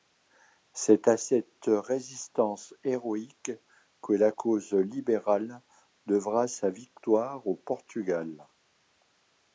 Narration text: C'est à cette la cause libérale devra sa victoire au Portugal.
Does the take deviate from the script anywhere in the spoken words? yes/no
yes